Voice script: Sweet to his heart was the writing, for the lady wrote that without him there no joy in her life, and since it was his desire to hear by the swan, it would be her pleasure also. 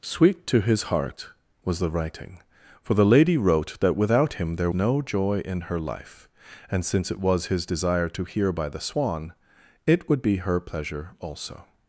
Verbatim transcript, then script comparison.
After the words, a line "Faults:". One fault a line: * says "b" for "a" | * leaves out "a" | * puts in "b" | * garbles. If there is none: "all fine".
Sweet to his heart was the writing, for the lady wrote that without him there no joy in her life, and since it was his desire to hear by the swan, it would be her pleasure also.
Faults:
all fine